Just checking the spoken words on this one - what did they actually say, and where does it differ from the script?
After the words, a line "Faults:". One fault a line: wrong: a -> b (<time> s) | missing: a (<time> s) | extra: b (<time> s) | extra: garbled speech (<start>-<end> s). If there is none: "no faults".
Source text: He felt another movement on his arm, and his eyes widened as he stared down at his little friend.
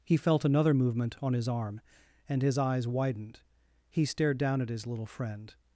He felt another movement on his arm, and his eyes widened he stared down at his little friend.
Faults:
missing: as (3.4 s)